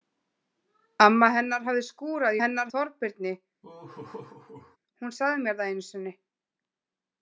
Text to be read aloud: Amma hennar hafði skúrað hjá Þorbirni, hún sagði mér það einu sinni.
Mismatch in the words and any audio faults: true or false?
true